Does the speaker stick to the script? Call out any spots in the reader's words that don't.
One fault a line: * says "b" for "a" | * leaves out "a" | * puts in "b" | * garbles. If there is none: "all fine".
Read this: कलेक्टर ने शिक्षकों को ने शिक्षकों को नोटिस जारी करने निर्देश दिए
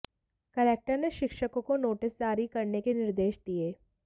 * leaves out "ने शिक्षकों को"
* puts in "के"